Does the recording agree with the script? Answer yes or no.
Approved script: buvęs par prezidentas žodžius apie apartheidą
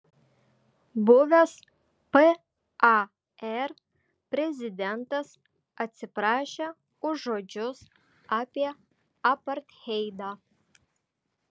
no